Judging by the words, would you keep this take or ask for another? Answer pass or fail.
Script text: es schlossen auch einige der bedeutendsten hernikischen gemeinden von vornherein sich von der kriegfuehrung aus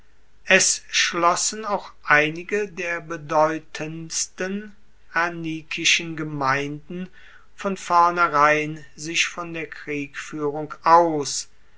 pass